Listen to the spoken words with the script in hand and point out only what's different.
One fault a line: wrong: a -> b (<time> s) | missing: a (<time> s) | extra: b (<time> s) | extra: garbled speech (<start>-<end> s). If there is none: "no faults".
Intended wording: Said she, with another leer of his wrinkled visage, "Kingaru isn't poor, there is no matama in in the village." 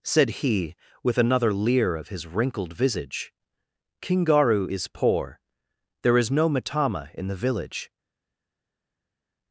wrong: she -> he (0.4 s)
wrong: isn't -> is (4.7 s)
missing: in (7.3 s)